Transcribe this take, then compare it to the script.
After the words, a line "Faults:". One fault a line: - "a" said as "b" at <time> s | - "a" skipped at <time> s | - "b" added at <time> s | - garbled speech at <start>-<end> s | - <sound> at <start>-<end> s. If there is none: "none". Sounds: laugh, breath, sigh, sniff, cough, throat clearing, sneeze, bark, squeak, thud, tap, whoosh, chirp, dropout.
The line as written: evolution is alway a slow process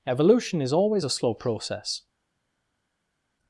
evolution is always a slow process
Faults:
- "alway" said as "always" at 0.7 s